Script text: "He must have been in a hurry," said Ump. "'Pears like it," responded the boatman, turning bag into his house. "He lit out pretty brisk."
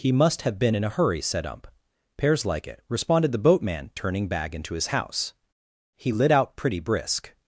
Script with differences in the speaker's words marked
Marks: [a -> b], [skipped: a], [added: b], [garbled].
"He must have been in a hurry," said Ump. "'Pears like it," responded the boatman, turning bag into his house. "He lit out pretty brisk."